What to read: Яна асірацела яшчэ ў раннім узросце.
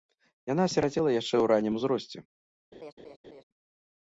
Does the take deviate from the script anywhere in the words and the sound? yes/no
yes